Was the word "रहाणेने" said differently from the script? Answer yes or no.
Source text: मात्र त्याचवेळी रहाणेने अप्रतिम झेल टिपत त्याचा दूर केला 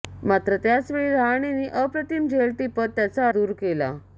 no